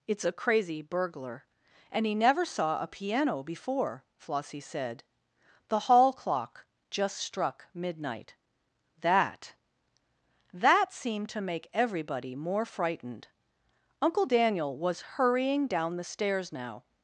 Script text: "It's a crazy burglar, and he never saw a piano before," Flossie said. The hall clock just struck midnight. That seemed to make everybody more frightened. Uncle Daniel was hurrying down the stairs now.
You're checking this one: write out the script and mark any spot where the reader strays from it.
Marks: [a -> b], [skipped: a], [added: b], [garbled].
"It's a crazy burglar, and he never saw a piano before," Flossie said. The hall clock just struck midnight. That [added: That] seemed to make everybody more frightened. Uncle Daniel was hurrying down the stairs now.